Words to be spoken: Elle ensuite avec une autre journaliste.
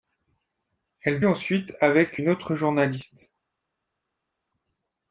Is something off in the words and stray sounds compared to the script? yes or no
no